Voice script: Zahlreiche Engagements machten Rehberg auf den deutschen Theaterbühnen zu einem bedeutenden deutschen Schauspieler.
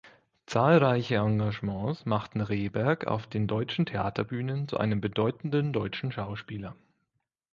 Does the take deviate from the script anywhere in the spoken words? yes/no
no